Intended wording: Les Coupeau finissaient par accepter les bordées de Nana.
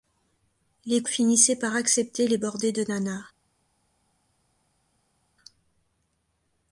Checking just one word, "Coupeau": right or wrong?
wrong